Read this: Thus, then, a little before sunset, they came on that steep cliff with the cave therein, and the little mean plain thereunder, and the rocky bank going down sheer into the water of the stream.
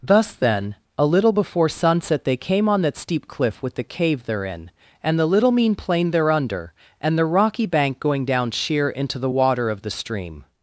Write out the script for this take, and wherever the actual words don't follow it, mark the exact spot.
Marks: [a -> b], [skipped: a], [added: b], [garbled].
Thus, then, a little before sunset, they came on that steep cliff with the cave therein, and the little mean plain thereunder, and the rocky bank going down sheer into the water of the stream.